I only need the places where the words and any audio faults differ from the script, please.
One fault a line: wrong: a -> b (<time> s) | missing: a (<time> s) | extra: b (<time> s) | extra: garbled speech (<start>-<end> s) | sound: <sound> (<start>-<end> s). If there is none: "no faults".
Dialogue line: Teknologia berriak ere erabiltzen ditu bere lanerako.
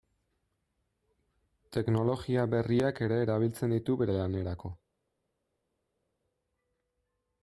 no faults